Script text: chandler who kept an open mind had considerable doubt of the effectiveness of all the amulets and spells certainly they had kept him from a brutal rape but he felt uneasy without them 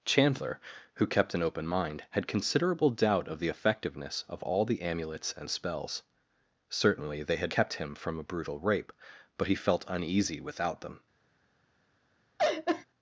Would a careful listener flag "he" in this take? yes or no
no